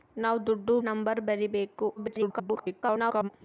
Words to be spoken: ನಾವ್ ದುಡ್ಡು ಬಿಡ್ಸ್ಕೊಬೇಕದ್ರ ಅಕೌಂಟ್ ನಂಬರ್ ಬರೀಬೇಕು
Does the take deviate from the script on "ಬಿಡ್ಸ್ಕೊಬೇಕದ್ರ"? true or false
true